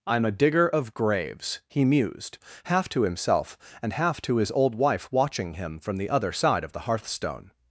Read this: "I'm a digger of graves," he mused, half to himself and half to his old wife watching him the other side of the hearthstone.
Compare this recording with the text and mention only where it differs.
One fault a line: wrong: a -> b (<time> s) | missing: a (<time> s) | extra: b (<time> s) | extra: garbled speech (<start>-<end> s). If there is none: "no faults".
extra: from (5.8 s)